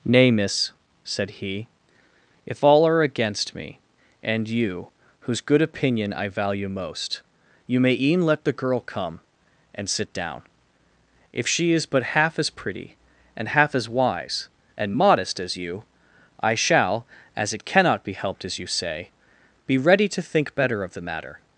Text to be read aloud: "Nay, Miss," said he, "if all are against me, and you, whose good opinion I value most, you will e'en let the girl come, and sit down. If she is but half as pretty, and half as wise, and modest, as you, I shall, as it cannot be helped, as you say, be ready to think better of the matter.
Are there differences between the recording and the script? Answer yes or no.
yes